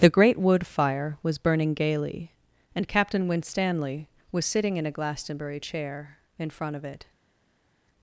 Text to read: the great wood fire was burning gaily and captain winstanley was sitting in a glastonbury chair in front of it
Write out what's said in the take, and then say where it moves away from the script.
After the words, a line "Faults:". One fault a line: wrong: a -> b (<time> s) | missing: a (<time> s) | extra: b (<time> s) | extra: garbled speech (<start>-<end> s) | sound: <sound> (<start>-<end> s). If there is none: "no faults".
the great wood fire was burning gaily and captain winstanley was sitting in a glastonbury chair in front of it
Faults:
no faults